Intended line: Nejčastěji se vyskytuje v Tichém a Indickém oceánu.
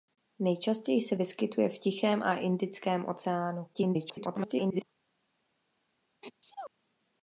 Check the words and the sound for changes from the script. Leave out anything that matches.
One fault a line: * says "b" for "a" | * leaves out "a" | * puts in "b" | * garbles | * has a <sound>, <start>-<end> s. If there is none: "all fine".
* garbles
* has a sneeze, 6.2-6.7 s